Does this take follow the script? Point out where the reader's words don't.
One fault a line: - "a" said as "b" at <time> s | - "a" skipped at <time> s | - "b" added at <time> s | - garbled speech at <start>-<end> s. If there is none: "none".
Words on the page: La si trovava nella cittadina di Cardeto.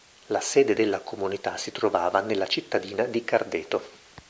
- "sede della Comunità" added at 0.4 s